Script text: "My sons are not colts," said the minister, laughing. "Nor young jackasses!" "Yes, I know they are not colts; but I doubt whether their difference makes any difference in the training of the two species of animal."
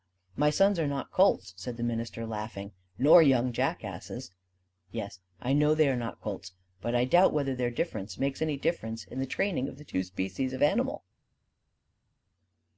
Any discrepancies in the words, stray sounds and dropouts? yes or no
no